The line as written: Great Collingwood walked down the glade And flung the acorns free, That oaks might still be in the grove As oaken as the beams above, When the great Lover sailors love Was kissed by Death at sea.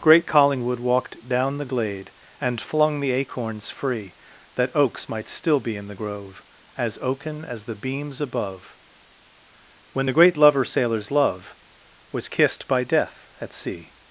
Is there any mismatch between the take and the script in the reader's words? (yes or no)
no